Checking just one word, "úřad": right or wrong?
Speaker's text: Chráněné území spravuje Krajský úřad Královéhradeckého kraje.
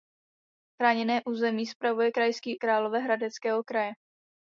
wrong